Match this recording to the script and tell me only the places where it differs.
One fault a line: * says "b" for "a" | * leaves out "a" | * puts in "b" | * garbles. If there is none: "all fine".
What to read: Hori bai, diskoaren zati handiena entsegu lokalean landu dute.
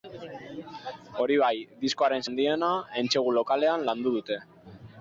* leaves out "zati"